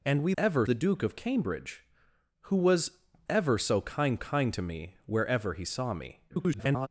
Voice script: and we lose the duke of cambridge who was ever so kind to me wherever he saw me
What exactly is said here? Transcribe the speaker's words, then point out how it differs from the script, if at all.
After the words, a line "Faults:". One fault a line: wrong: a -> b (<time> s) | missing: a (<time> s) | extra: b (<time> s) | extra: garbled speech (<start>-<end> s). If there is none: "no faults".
and we ever the duke of cambridge who was ever so kind kind to me wherever he saw me [garbled]
Faults:
wrong: lose -> ever (0.4 s)
extra: kind (4.1 s)
extra: garbled speech (6.3-6.9 s)